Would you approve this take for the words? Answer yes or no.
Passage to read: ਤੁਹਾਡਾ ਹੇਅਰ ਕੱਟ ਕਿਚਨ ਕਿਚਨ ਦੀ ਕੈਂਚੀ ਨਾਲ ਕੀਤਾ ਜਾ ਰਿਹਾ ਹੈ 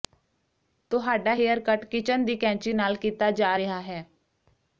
no